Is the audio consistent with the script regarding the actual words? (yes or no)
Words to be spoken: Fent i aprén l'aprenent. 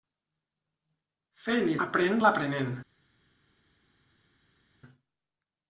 yes